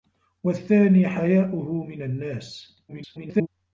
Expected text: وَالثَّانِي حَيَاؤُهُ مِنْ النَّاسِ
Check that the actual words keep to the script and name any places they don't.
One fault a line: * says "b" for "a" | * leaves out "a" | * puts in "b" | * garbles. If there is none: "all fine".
* garbles